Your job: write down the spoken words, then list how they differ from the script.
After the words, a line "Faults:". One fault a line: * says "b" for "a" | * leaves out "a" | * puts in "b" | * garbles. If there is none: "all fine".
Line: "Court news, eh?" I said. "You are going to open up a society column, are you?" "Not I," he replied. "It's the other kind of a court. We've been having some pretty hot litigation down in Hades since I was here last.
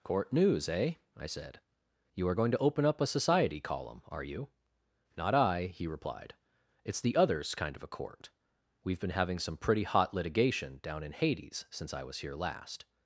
"Court news, eh?" I said. "You are going to open up a society column, are you?" "Not I," he replied. "It's the others kind of a court. We've been having some pretty hot litigation down in Hades since I was here last.
Faults:
* says "others" for "other"